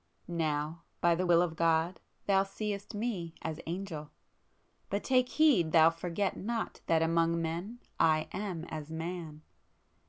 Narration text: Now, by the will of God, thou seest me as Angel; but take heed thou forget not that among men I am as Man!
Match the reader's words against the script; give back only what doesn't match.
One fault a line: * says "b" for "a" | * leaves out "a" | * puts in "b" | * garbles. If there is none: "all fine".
all fine